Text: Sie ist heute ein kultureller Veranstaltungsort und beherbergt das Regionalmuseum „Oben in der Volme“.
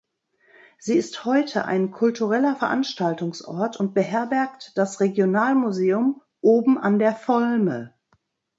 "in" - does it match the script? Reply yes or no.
no